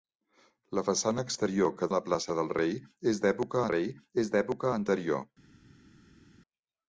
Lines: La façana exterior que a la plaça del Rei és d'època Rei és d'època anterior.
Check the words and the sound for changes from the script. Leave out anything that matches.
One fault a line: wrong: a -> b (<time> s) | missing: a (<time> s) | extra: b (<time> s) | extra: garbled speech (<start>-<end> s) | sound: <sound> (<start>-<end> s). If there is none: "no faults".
no faults